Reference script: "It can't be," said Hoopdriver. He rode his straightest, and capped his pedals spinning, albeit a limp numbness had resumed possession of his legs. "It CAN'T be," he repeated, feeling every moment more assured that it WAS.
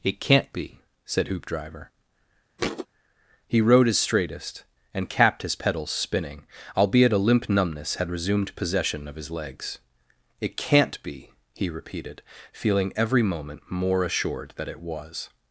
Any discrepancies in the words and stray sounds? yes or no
yes